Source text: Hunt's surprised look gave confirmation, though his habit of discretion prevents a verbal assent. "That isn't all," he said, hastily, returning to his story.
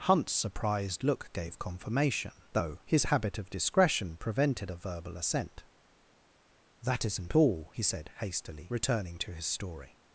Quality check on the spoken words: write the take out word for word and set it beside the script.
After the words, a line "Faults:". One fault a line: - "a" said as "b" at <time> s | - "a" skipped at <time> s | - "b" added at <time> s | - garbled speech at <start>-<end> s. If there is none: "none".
Hunt's surprised look gave confirmation, though his habit of discretion prevented a verbal assent. "That isn't all," he said, hastily, returning to his story.
Faults:
- "prevents" said as "prevented" at 4.2 s